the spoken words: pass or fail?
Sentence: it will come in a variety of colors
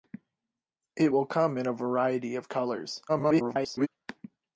fail